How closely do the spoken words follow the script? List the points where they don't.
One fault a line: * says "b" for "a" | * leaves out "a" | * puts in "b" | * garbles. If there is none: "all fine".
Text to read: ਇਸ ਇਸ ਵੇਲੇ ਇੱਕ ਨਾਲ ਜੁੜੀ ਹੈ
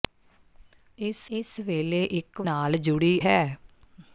all fine